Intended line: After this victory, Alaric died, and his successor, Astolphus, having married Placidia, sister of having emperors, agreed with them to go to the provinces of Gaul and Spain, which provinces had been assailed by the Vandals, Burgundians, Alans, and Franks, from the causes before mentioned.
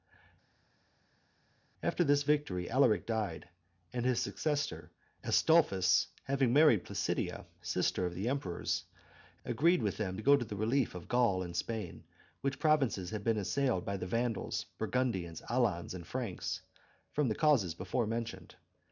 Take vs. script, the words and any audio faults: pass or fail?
fail